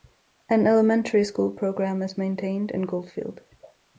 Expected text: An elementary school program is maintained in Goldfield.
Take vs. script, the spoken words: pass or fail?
pass